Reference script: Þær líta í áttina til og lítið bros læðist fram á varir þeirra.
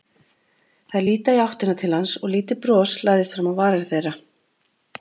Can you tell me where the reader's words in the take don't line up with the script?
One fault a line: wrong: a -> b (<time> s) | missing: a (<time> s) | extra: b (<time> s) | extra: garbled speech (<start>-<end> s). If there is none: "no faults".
extra: hans (2.0 s)